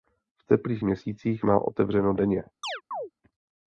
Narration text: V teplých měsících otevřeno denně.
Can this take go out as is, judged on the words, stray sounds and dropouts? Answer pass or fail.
fail